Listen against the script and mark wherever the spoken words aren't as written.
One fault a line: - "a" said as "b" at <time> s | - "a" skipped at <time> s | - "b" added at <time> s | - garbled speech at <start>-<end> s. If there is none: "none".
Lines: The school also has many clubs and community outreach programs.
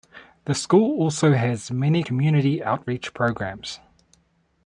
- "clubs and" skipped at 2.0 s